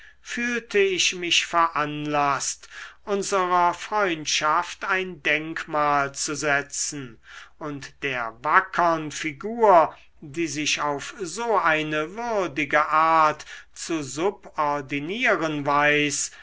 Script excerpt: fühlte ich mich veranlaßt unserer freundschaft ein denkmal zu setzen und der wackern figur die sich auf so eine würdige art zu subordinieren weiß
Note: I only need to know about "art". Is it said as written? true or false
true